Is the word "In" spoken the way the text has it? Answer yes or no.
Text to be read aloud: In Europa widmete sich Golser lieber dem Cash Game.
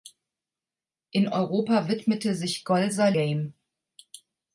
yes